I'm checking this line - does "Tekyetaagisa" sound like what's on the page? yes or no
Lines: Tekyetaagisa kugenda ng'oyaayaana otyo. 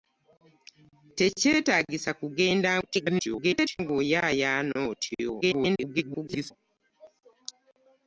yes